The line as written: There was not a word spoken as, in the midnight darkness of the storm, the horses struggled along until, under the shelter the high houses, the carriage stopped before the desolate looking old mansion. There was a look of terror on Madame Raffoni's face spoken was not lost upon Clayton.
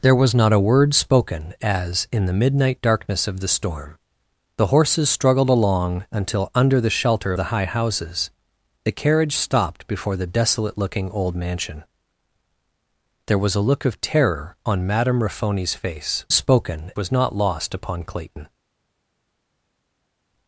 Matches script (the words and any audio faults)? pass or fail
pass